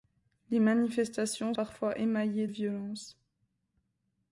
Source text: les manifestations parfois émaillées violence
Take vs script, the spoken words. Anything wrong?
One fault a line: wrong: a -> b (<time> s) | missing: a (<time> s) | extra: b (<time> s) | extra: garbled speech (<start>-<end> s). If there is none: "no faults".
no faults